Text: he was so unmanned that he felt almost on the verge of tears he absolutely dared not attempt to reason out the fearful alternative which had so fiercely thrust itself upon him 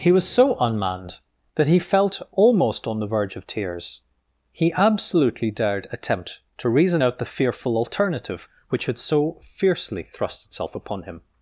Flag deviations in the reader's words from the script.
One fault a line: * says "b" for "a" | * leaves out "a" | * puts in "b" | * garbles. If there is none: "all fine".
* leaves out "not"